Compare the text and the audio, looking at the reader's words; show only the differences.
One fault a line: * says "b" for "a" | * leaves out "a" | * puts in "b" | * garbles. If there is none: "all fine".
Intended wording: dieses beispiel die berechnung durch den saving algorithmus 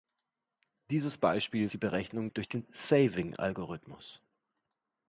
all fine